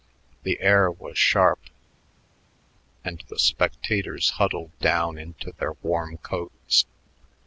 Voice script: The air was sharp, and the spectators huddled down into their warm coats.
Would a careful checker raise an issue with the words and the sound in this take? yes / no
no